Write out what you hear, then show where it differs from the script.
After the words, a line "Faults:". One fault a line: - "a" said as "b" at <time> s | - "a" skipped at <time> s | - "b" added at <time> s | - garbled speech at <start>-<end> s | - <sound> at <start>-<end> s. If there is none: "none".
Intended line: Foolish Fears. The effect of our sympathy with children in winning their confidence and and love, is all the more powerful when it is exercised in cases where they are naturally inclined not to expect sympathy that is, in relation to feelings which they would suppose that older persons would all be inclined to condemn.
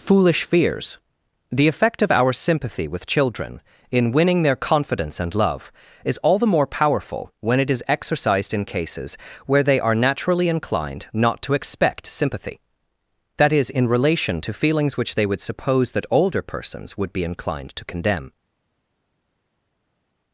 Foolish Fears. The effect of our sympathy with children in winning their confidence and love, is all the more powerful when it is exercised in cases where they are naturally inclined not to expect sympathy that is, in relation to feelings which they would suppose that older persons would be inclined to condemn.
Faults:
- "and" skipped at 5.3 s
- "all" skipped at 17.1 s